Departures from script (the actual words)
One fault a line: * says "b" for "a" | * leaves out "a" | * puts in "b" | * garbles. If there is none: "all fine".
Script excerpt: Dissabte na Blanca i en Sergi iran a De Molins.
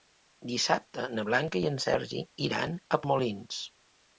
all fine